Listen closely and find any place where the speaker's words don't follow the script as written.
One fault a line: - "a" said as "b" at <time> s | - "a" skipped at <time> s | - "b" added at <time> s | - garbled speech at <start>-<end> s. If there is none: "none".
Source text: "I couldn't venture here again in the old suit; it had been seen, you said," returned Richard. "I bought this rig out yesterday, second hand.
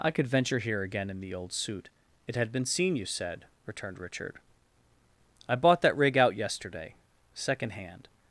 - "couldn't" said as "could" at 0.1 s
- "this" said as "that" at 5.8 s